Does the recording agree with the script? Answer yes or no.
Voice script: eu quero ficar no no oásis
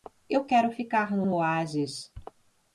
yes